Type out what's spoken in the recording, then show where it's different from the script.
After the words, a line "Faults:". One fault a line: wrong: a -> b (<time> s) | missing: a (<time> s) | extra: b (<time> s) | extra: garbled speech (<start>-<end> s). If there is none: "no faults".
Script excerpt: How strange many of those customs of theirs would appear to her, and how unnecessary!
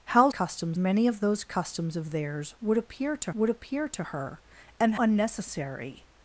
How customs many of those customs of theirs would appear to would appear to her, and unnecessary!
Faults:
wrong: strange -> customs (0.3 s)
extra: would appear to (3.3 s)
missing: how (5.0 s)